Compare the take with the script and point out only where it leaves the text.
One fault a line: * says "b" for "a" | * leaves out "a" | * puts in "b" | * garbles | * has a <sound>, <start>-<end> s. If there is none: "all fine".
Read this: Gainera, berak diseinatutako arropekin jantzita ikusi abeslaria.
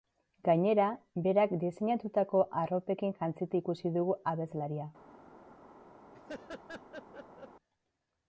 * puts in "dugu"
* has a laugh, 6.1-7.5 s